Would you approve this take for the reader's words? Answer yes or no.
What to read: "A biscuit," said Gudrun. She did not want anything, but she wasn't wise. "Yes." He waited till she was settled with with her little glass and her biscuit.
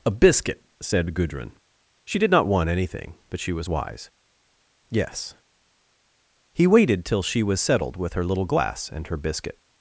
no